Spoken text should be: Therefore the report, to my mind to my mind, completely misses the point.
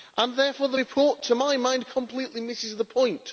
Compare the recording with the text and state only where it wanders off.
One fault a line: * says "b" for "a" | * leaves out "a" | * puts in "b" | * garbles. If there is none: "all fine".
* leaves out "to my mind"